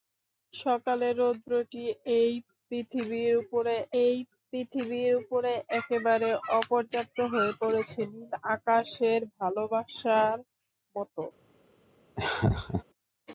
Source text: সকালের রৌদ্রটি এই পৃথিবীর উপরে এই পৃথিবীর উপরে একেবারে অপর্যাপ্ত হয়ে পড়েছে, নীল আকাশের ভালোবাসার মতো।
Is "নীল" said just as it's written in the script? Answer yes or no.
yes